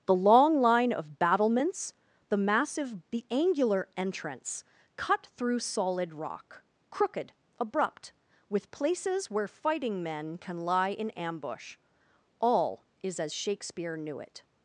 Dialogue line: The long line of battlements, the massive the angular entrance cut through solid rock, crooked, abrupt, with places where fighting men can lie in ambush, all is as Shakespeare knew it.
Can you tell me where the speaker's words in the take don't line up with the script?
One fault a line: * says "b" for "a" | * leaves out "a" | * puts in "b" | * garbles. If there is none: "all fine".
all fine